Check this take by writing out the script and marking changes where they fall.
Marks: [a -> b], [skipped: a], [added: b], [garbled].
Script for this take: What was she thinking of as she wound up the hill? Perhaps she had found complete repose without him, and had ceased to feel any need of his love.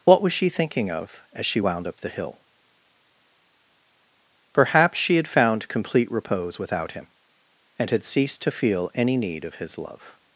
What was she thinking of as she wound up the hill? Perhaps she had found complete repose without him, and had ceased to feel any need of his love.